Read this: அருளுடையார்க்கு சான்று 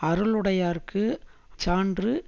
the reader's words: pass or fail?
pass